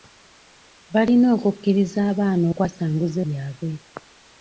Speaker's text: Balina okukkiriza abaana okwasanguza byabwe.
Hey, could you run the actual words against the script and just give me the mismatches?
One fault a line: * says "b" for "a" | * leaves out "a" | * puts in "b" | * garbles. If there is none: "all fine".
all fine